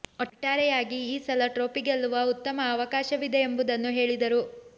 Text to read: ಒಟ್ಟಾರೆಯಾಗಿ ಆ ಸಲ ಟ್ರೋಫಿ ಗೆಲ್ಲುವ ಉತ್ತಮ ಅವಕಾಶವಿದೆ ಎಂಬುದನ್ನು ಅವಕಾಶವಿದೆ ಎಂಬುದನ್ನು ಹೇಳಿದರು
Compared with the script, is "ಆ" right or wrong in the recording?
wrong